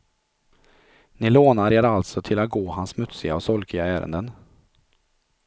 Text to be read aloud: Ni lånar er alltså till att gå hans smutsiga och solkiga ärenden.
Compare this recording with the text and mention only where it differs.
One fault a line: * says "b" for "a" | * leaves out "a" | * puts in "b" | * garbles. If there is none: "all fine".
all fine